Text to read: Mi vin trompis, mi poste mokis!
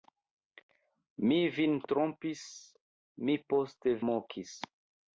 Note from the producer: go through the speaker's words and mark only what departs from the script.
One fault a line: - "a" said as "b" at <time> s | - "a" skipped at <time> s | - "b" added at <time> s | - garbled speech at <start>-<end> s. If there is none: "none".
none